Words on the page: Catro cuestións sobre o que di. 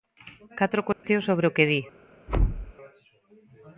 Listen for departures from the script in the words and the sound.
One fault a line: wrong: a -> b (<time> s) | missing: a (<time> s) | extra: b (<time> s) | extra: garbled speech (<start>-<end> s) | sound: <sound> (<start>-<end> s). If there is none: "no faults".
sound: dropout (0.9-1.0 s)
sound: thud (2.3-2.7 s)